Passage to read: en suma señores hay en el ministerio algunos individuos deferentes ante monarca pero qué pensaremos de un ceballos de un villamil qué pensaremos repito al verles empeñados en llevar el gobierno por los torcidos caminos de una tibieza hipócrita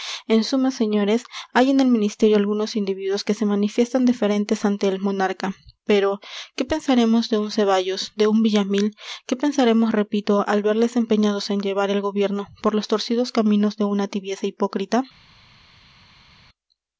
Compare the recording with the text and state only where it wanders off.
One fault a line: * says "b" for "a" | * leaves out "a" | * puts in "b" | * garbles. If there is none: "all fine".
* puts in "que se manifiestan"
* puts in "el"